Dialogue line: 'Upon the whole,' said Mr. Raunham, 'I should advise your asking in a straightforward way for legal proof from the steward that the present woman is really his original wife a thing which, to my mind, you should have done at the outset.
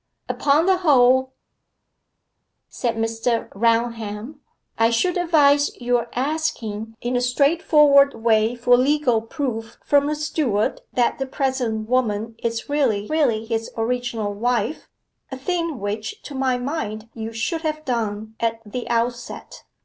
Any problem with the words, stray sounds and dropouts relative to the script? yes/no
yes